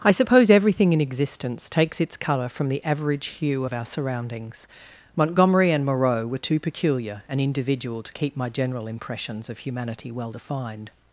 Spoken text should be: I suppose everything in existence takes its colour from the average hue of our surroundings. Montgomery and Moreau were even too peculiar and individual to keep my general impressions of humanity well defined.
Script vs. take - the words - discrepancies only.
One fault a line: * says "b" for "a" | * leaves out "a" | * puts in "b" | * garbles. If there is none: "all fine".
* leaves out "even"